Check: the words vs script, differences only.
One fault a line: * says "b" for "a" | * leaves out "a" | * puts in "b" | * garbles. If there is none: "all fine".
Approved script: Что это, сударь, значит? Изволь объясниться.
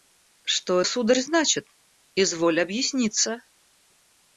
* leaves out "это"